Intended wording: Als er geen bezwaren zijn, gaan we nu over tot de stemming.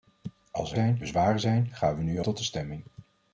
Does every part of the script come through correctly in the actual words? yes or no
no